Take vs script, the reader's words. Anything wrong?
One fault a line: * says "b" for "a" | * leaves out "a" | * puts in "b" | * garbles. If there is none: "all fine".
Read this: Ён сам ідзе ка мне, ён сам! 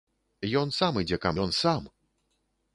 * leaves out "мне"